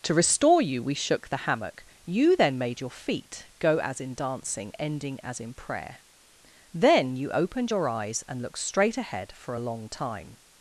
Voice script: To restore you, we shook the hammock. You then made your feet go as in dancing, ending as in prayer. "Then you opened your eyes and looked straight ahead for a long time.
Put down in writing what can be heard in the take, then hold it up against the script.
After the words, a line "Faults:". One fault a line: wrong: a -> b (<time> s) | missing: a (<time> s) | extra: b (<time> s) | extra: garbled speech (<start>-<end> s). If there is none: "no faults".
To restore you, we shook the hammock. You then made your feet go as in dancing, ending as in prayer. "Then you opened your eyes and looked straight ahead for a long time.
Faults:
no faults